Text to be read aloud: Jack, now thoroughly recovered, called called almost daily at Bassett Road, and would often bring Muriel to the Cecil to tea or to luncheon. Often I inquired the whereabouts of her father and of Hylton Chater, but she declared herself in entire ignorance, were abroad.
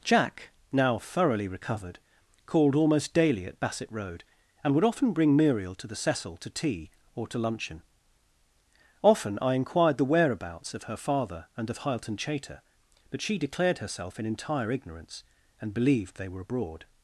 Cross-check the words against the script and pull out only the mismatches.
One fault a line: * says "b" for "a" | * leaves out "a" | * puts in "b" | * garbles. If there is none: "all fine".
* leaves out "called"
* puts in "and believed they"